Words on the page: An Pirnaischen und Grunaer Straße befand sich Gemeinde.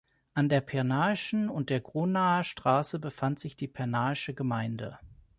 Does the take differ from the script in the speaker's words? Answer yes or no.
yes